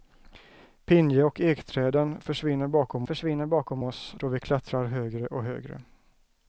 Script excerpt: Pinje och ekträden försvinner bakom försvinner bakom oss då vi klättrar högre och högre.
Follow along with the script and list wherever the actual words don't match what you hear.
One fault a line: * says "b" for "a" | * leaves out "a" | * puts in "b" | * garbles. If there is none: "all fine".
all fine